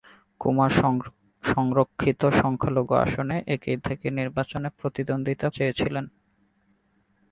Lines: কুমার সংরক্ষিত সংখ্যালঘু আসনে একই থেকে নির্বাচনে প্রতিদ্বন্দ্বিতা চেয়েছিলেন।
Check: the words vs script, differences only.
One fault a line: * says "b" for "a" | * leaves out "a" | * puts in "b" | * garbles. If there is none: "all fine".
all fine